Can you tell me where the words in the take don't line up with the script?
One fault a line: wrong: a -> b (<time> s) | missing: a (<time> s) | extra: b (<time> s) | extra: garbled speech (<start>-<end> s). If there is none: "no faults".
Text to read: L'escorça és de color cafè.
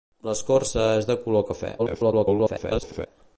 extra: garbled speech (1.8-3.1 s)